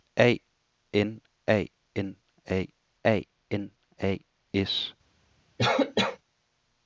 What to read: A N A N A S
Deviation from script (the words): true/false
true